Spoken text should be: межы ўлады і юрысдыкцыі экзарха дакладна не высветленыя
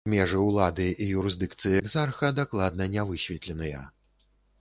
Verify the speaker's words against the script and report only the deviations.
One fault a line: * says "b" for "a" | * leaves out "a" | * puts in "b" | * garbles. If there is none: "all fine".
all fine